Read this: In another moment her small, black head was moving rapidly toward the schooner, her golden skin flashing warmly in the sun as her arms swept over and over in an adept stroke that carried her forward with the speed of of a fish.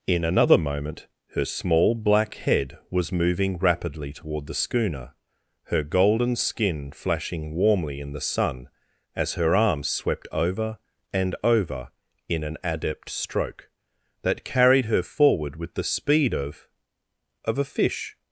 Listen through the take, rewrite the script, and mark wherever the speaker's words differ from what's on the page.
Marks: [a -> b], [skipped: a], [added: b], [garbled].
In another moment her small, black head was moving rapidly toward the schooner, her golden skin flashing warmly in the sun as her arms swept over and over in an adept stroke that carried her forward with the speed of of a fish.